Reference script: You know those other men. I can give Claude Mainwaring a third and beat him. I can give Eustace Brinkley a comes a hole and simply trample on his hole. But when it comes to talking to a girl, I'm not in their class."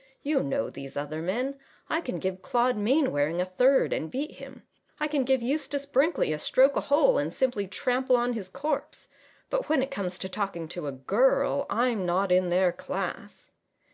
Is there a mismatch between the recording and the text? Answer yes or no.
yes